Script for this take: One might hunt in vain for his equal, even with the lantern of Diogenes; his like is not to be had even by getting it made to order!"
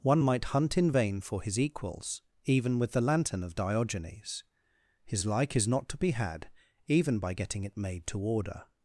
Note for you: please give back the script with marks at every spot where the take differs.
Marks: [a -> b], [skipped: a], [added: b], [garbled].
One might hunt in vain for his [equal, -> equals] even with the lantern of Diogenes; his like is not to be had even by getting it made to order!"